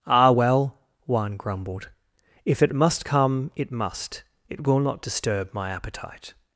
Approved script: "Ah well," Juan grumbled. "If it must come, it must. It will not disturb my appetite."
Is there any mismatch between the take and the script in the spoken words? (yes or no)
no